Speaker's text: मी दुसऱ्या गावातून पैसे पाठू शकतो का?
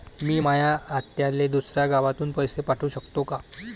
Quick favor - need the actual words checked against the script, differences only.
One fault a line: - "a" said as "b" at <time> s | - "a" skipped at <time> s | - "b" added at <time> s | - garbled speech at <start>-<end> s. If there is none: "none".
- "माया आत्याले" added at 0.4 s